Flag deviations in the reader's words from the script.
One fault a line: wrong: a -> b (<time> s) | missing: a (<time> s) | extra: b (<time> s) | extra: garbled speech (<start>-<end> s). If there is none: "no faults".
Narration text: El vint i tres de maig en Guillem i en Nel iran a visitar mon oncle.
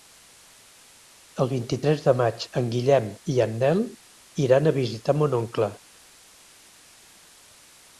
no faults